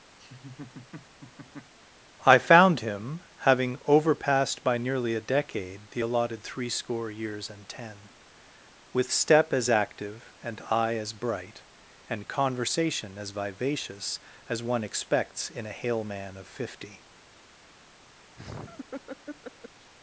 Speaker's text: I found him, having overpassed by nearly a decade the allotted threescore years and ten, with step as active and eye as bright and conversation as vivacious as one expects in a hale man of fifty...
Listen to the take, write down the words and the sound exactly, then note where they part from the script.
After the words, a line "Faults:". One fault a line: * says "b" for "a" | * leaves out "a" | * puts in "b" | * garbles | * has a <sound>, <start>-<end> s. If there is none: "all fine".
I found him, having overpassed by nearly a decade the allotted threescore years and ten, with step as active and eye as bright and conversation as vivacious as one expects in a hale man of fifty...
Faults:
* has a laugh, 0.2-1.7 s
* has a laugh, 18.4-19.9 s